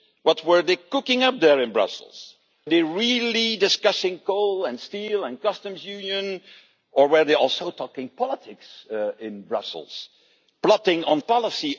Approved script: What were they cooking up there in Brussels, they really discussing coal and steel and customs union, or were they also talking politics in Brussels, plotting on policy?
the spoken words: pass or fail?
pass